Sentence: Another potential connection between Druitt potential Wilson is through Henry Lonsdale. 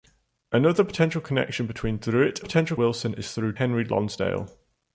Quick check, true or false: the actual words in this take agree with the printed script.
true